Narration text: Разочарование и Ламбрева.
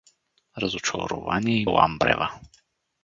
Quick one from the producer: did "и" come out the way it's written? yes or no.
yes